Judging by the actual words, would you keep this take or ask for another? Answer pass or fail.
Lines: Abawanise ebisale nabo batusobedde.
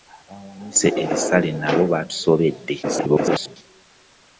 fail